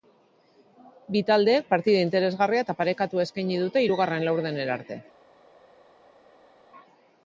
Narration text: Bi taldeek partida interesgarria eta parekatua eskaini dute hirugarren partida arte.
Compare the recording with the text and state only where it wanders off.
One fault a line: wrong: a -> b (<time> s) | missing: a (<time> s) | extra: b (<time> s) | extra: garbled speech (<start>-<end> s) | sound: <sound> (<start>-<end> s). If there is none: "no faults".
wrong: partida -> laurdenera (4.3 s)